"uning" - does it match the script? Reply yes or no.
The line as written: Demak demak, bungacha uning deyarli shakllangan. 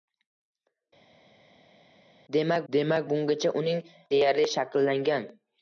yes